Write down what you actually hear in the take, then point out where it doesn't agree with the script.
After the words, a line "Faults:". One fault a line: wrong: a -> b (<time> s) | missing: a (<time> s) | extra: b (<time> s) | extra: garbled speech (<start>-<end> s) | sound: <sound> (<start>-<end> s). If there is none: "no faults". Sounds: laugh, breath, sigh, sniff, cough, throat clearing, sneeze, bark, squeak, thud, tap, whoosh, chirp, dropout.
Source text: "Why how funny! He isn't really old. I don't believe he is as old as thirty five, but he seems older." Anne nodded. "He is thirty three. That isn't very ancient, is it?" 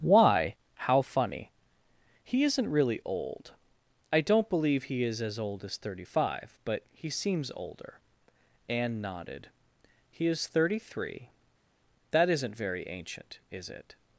"Why how funny! He isn't really old. I don't believe he is as old as thirty five, but he seems older." Anne nodded. "He is thirty three. That isn't very ancient, is it?"
Faults:
no faults